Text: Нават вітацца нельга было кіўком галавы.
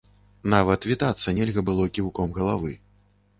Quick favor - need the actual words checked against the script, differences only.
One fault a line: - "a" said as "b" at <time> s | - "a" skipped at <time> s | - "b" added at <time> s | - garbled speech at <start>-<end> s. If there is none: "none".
none